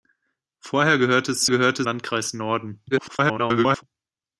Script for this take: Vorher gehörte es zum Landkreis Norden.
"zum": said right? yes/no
no